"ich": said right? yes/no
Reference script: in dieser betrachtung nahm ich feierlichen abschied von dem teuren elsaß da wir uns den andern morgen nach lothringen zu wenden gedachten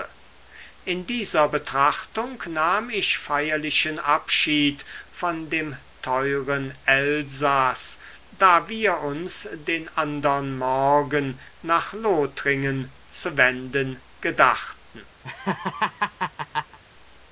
yes